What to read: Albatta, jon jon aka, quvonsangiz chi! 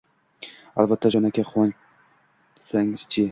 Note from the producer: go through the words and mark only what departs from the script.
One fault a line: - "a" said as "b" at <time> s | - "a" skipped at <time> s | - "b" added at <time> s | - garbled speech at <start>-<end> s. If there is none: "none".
- "jon" skipped at 1.3 s